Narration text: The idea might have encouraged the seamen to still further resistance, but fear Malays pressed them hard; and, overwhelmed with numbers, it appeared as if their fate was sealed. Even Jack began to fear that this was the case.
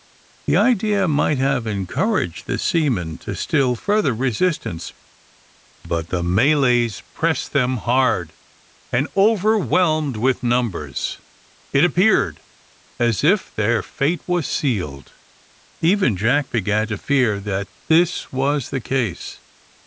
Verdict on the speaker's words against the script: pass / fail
fail